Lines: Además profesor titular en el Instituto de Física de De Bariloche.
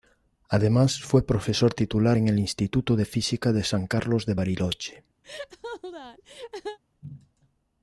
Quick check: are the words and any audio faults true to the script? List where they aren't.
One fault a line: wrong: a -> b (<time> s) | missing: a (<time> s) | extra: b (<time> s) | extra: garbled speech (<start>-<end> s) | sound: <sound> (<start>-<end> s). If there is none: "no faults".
extra: fue (1.0 s)
extra: San Carlos (3.6 s)
sound: laugh (5.2-6.8 s)